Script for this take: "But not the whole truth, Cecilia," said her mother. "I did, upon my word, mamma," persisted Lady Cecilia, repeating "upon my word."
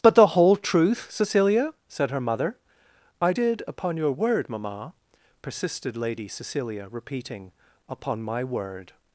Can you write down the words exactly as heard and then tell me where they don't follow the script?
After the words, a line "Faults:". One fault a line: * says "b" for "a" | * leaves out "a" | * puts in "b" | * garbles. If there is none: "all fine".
"But the whole truth, Cecilia," said her mother. "I did, upon your word, mamma," persisted Lady Cecilia, repeating "upon my word."
Faults:
* leaves out "not"
* says "your" for "my"